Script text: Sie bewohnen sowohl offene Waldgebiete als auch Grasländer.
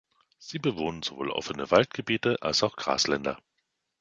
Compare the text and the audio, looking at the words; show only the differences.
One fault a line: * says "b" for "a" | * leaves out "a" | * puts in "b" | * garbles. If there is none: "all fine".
all fine